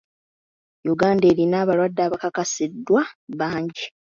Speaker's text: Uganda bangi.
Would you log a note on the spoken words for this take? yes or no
yes